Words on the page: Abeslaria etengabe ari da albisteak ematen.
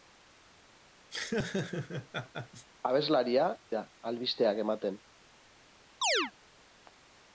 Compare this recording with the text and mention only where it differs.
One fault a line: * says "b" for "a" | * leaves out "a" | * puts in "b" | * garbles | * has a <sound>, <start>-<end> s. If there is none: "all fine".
* has a laugh, 1.1-2.7 s
* leaves out "etengabe ari"
* has a chirp, 6.0-6.3 s